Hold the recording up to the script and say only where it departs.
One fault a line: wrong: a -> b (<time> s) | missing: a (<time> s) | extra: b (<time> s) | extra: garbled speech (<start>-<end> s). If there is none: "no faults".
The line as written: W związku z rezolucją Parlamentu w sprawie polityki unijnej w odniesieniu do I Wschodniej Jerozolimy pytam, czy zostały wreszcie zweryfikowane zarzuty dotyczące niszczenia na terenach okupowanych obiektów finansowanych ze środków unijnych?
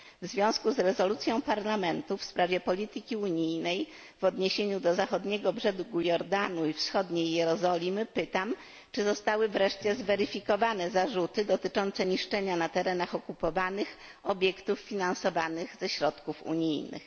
extra: Zachodniego Brzegu Jordanu (5.0 s)